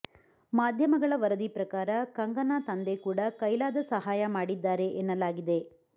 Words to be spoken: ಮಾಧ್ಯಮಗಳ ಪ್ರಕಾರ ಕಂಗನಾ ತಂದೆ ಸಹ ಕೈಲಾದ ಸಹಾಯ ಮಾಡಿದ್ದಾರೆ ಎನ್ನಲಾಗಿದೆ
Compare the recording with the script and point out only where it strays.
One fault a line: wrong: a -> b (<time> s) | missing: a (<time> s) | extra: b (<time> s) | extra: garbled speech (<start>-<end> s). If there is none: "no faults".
extra: ವರದಿ (1.1 s)
wrong: ಸಹ -> ಕೂಡ (3.0 s)